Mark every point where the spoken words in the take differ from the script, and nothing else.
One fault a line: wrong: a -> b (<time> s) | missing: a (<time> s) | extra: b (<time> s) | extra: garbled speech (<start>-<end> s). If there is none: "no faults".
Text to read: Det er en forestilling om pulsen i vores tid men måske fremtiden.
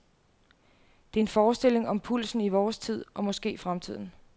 wrong: men -> og (3.1 s)